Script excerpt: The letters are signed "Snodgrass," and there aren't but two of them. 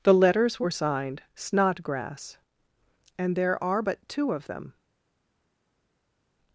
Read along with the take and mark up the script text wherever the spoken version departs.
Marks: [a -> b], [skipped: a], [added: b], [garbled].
The letters [are -> were] signed "Snodgrass," and there [aren't -> are] but two of them.